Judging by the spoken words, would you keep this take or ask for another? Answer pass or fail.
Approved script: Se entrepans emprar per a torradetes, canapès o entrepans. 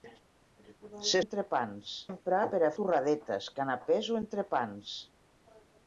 pass